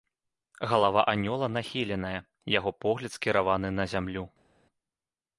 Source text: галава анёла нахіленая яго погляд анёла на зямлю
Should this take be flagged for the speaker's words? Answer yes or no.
yes